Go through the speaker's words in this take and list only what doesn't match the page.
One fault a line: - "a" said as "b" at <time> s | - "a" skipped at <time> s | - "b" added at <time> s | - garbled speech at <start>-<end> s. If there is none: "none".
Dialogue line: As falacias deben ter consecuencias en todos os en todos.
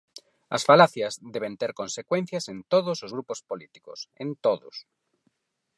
- "grupos políticos" added at 3.2 s